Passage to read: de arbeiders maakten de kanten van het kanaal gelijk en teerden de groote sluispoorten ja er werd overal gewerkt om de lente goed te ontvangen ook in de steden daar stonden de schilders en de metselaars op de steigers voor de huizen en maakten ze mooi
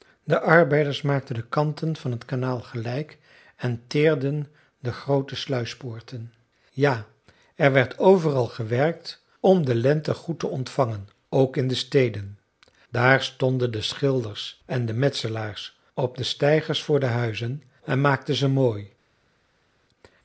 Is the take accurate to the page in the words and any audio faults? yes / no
yes